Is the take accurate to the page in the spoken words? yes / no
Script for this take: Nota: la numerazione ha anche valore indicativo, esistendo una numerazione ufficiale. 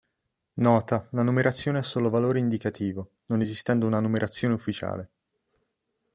no